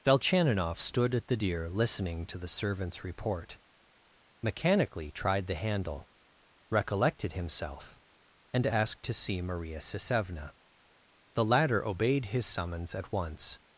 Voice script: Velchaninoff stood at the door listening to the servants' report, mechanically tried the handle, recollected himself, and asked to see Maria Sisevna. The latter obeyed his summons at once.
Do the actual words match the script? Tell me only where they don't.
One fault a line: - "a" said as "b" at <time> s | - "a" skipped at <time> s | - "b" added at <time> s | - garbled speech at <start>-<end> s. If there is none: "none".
- "door" said as "deer" at 1.3 s